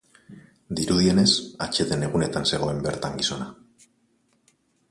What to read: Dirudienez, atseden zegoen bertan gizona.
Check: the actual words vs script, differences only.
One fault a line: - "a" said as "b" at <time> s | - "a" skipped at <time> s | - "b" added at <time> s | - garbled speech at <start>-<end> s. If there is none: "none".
- "egunetan" added at 2.1 s